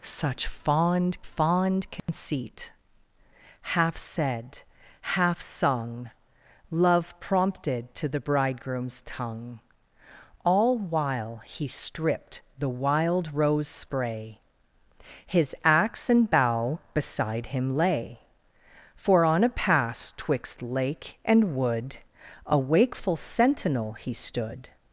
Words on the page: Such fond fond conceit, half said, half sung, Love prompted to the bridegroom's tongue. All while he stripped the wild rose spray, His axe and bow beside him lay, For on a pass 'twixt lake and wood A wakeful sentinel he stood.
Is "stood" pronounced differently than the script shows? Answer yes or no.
no